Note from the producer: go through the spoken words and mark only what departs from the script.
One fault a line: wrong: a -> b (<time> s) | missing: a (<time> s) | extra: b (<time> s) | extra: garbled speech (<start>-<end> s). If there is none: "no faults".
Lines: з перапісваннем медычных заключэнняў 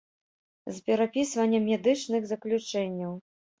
no faults